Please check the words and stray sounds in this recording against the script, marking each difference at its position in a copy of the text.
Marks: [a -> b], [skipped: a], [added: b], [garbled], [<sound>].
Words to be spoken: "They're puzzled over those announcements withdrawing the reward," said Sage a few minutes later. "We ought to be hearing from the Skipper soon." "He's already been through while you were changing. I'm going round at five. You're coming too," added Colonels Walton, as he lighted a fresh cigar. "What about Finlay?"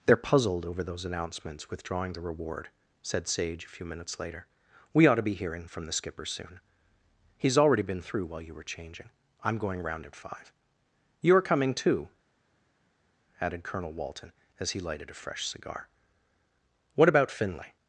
"They're puzzled over those announcements withdrawing the reward," said Sage a few minutes later. "We ought to be hearing from the Skipper soon." "He's already been through while you were changing. I'm going round at five. You're coming too," added [Colonels -> Colonel] Walton, as he lighted a fresh cigar. "What about Finlay?"